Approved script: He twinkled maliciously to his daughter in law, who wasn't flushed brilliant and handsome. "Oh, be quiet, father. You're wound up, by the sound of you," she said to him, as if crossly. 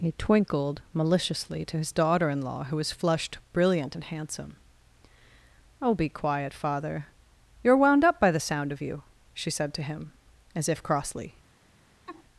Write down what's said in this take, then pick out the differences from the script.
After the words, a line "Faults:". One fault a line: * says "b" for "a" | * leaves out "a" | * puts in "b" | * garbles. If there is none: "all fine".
He twinkled maliciously to his daughter in law, who was flushed brilliant and handsome. "Oh, be quiet, father. You're wound up, by the sound of you," she said to him, as if crossly.
Faults:
* says "was" for "wasn't"